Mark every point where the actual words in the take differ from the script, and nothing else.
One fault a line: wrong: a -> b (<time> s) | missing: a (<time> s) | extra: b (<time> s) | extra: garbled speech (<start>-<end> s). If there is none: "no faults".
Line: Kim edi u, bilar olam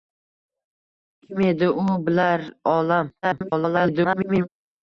extra: garbled speech (3.2-4.5 s)